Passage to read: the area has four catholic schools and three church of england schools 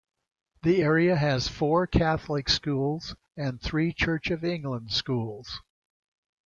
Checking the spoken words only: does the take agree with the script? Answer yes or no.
yes